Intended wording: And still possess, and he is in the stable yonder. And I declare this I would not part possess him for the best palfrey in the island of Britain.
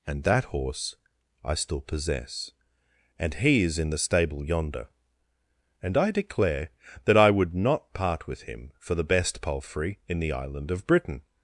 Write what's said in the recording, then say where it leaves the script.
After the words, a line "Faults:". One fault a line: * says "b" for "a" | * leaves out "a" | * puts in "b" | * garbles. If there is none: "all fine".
And that horse I still possess, and he is in the stable yonder. And I declare that I would not part with him for the best palfrey in the island of Britain.
Faults:
* puts in "that horse I"
* says "that" for "this"
* says "with" for "possess"